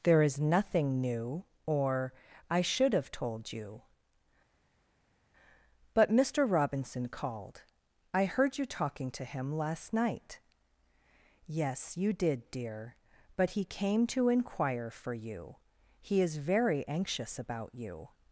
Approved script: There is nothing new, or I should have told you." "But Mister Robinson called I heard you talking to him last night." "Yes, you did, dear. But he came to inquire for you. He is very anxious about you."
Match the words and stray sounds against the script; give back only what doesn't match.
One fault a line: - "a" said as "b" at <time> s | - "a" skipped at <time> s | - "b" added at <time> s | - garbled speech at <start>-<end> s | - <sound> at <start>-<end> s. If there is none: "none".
none